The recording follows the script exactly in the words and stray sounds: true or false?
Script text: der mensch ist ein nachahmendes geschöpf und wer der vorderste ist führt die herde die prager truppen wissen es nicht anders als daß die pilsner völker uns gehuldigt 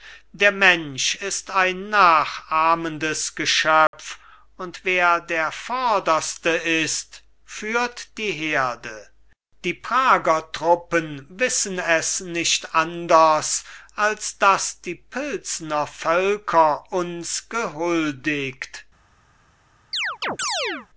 false